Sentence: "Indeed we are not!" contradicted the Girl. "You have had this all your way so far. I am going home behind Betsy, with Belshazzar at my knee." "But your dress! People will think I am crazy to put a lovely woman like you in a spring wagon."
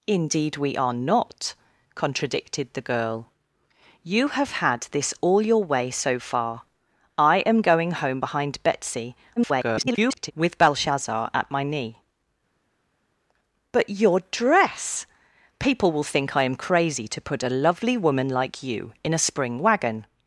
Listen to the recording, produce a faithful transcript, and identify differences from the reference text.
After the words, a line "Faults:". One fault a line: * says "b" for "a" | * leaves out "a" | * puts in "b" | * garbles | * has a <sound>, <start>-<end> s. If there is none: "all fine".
"Indeed we are not!" contradicted the Girl. "You have had this all your way so far. I am going home behind Betsy, [garbled] with Belshazzar at my knee." "But your dress! People will think I am crazy to put a lovely woman like you in a spring wagon."
Faults:
* garbles